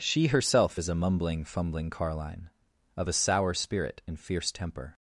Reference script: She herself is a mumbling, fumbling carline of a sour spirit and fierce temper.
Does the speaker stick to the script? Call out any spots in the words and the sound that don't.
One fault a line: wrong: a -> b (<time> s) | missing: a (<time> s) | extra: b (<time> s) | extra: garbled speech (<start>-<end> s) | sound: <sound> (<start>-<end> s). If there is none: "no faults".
no faults